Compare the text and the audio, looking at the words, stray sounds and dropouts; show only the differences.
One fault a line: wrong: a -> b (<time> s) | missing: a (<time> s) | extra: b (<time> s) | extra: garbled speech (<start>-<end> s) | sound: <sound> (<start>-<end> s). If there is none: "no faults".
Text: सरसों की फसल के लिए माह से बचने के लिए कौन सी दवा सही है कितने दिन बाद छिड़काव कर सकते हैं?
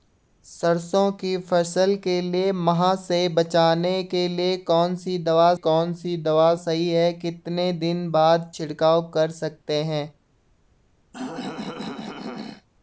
extra: कौन सी दवा (5.5 s)
sound: throat clearing (11.1-12.7 s)